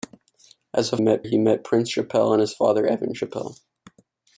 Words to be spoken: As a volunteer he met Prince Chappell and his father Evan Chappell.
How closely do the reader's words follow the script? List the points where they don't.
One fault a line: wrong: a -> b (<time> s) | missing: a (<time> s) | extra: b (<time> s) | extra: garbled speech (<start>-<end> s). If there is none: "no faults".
wrong: volunteer -> met (1.0 s)